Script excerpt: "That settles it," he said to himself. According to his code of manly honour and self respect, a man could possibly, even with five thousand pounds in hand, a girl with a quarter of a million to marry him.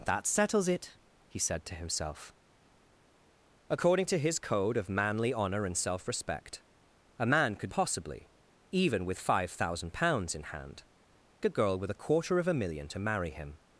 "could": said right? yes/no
yes